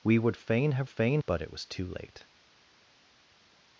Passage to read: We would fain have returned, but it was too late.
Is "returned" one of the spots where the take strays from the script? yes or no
yes